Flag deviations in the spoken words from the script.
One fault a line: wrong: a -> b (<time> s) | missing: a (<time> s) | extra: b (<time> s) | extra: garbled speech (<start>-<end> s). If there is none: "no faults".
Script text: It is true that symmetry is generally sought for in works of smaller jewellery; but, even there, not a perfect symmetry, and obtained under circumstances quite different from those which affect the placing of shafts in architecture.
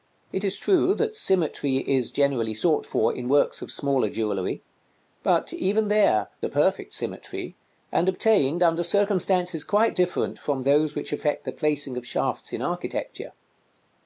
missing: not (6.3 s)